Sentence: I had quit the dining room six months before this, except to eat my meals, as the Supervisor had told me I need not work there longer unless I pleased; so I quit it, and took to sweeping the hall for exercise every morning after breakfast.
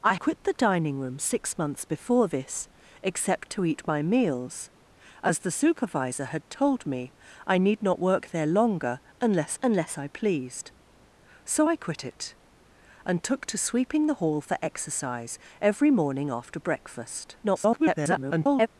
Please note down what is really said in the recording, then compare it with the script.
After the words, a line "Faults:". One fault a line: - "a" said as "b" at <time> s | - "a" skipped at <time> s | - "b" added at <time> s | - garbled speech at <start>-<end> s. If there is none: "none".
I quit the dining room six months before this, except to eat my meals, as the Supervisor had told me I need not work there longer unless unless I pleased; so I quit it, and took to sweeping the hall for exercise every morning after breakfast. [garbled]
Faults:
- "had" skipped at 0.1 s
- "unless" added at 9.6 s
- garbled speech at 17.4-18.7 s